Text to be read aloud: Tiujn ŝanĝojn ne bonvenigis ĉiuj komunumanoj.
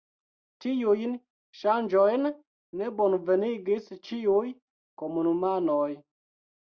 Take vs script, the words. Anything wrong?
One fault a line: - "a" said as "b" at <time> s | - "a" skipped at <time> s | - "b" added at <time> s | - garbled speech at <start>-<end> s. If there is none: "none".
none